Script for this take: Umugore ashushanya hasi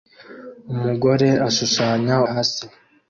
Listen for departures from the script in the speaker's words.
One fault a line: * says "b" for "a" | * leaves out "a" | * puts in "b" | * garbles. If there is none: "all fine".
all fine